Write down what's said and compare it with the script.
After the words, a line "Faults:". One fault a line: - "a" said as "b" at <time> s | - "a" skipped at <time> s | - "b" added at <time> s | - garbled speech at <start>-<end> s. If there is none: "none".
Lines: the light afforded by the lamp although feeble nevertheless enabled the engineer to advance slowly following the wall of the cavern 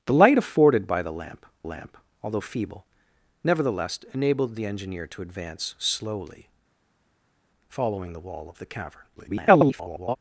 the light afforded by the lamp lamp although feeble nevertheless enabled the engineer to advance slowly following the wall of the cavern [garbled]
Faults:
- "lamp" added at 1.6 s
- garbled speech at 9.2-10.2 s